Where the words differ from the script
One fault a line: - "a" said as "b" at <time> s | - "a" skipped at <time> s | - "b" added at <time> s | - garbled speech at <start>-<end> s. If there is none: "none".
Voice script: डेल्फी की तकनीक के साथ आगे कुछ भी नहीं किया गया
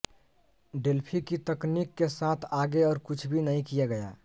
- "और" added at 2.8 s